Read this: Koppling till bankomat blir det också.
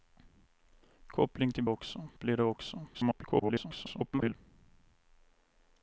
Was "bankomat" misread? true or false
true